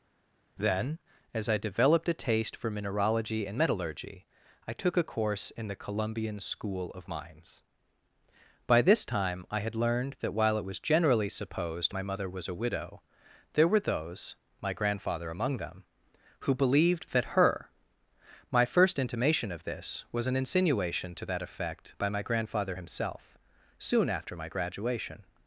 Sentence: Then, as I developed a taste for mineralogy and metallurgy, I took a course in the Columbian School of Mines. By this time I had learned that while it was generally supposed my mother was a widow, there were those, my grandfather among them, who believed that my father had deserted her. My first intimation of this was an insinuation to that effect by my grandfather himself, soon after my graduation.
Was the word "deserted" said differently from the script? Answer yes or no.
yes